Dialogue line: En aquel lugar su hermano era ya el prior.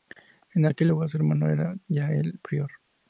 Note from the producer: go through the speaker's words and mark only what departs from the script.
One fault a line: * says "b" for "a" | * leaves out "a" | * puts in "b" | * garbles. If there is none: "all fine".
all fine